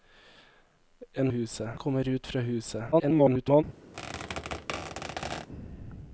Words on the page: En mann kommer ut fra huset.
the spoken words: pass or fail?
fail